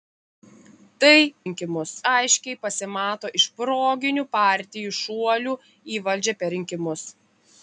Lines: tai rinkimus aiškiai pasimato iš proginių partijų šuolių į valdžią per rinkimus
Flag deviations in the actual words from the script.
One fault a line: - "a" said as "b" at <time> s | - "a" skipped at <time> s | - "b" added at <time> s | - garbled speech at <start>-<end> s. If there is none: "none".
none